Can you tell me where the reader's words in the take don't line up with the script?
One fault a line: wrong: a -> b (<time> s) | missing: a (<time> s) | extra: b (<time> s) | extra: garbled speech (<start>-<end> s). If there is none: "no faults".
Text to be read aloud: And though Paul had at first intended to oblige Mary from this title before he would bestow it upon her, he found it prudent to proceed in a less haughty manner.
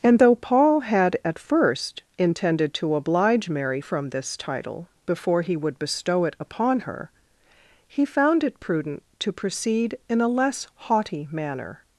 no faults